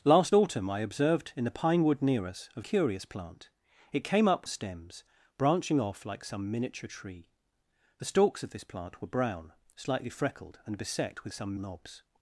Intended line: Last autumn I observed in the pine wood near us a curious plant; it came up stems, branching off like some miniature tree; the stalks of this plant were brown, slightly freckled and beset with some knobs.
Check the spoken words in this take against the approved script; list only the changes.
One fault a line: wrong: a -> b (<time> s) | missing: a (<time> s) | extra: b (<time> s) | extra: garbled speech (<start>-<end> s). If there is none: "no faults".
no faults